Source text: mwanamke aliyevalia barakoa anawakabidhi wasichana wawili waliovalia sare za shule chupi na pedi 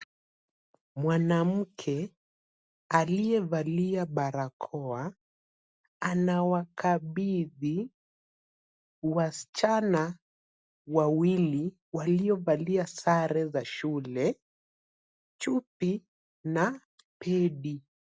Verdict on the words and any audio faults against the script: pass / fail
pass